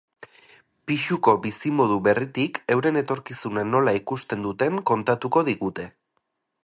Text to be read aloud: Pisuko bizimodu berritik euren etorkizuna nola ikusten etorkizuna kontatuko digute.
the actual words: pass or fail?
fail